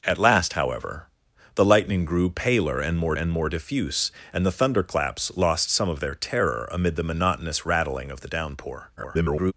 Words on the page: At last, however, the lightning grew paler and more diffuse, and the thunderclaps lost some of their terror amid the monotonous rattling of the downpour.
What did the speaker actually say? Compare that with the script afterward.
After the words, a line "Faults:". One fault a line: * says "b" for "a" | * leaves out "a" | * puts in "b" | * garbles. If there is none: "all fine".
At last, however, the lightning grew paler and more and more diffuse, and the thunderclaps lost some of their terror amid the monotonous rattling of the downpour. [garbled]
Faults:
* puts in "and more"
* garbles